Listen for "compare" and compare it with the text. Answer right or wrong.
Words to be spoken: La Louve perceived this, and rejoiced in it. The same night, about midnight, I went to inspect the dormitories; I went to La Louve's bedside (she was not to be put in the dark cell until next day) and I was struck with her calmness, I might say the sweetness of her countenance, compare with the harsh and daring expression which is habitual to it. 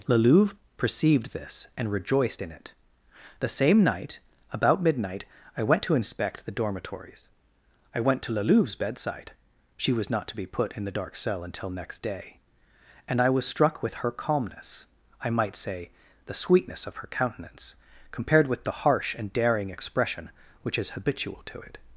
wrong